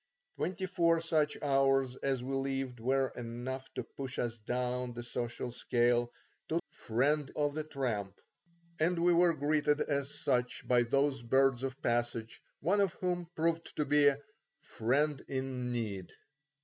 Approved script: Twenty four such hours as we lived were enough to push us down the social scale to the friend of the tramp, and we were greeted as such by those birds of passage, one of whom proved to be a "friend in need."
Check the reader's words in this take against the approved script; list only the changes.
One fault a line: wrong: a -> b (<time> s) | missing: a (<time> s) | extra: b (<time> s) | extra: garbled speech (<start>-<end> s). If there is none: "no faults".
no faults